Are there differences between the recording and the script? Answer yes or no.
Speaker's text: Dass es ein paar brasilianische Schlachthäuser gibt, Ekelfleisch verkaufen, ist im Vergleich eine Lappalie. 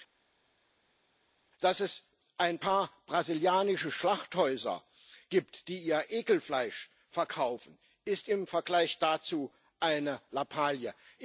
yes